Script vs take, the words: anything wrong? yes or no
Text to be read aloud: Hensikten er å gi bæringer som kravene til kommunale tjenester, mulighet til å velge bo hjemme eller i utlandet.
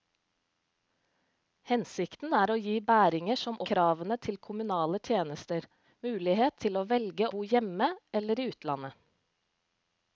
no